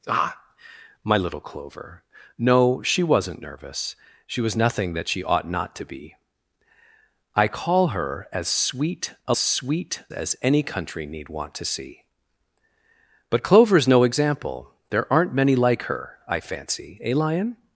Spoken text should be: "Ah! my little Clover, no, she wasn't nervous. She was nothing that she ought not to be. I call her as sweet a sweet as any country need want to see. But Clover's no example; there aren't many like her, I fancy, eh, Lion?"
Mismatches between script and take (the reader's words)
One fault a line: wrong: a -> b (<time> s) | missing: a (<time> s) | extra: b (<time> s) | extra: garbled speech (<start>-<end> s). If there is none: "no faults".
no faults